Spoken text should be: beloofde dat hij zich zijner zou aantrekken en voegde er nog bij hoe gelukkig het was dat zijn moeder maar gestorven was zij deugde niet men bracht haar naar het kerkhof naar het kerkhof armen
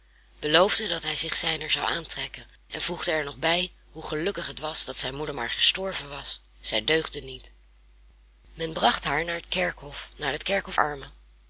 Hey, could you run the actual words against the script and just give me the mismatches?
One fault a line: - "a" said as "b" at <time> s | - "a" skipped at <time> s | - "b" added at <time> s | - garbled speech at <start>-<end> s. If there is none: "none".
none